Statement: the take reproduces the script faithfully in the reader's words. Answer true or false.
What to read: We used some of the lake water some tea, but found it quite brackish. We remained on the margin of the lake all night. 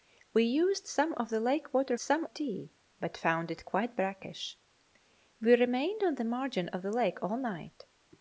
true